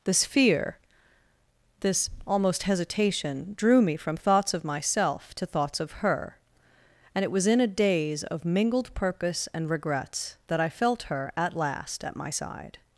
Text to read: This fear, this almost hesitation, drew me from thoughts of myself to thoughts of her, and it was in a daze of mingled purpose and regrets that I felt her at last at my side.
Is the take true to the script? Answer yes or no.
yes